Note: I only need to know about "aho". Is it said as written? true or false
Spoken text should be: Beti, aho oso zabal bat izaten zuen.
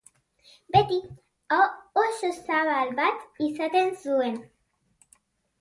true